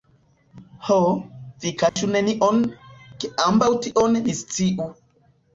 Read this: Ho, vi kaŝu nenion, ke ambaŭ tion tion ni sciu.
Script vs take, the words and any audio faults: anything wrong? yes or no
yes